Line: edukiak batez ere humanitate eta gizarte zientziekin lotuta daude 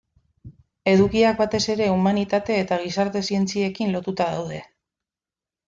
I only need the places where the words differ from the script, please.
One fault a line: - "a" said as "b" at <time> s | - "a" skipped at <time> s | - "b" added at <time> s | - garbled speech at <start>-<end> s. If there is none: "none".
none